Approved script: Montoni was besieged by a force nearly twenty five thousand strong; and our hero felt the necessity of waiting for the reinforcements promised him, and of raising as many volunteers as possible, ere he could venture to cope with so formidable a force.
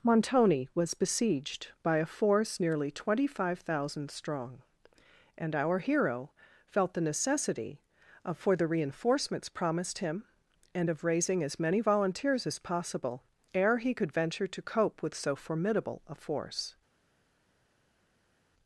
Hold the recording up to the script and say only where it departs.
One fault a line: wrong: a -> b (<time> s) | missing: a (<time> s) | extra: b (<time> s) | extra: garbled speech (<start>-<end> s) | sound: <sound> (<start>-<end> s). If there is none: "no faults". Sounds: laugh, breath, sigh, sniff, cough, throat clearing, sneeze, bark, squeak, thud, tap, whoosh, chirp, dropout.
missing: waiting (8.3 s)